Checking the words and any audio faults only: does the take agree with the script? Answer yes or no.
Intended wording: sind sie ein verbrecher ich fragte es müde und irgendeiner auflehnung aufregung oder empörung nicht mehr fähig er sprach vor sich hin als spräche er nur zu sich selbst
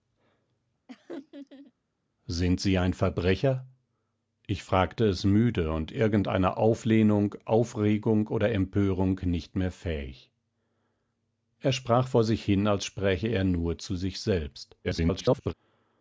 no